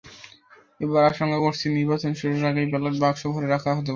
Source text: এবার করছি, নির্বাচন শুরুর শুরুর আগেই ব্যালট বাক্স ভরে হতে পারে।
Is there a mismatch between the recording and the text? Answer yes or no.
yes